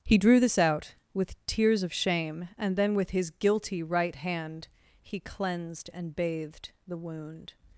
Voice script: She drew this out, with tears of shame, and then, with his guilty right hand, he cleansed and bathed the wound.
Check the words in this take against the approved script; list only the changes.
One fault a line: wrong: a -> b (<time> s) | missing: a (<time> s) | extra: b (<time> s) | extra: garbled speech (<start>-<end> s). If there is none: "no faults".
wrong: She -> He (0.0 s)